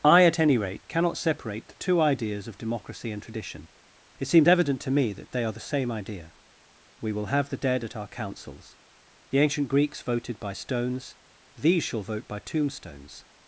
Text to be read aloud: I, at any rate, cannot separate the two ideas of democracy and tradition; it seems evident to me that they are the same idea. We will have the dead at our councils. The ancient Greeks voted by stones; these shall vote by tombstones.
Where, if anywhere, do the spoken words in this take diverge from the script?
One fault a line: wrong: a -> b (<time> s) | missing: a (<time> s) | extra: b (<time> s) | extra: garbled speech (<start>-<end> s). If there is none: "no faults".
no faults